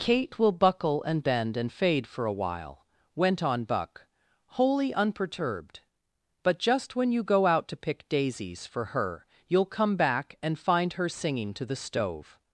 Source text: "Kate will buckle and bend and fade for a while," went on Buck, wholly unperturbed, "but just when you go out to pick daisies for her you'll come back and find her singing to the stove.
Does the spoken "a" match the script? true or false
true